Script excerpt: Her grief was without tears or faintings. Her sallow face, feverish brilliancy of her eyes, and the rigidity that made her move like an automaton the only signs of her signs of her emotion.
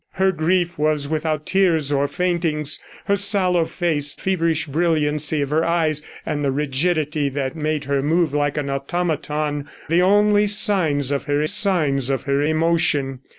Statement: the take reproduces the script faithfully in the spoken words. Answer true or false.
true